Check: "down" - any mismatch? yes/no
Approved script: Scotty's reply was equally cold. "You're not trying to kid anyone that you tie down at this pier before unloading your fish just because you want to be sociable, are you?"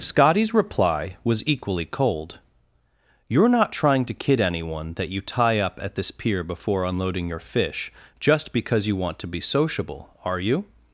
yes